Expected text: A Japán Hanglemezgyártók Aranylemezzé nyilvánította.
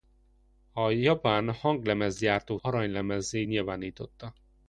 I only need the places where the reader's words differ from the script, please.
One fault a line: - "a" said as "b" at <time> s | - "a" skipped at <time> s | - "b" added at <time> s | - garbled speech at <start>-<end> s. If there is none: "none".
none